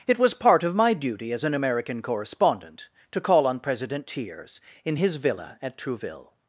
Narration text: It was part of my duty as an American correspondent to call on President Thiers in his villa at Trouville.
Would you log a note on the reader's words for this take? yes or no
no